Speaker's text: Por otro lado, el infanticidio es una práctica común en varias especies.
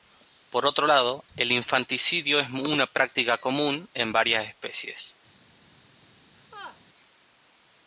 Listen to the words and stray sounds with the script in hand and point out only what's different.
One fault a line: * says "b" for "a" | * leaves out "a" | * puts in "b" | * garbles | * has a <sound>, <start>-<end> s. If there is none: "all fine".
* has a laugh, 6.3-6.8 s